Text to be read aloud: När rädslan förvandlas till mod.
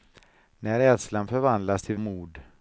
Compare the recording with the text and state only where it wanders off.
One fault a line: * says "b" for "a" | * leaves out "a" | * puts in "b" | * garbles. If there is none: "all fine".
all fine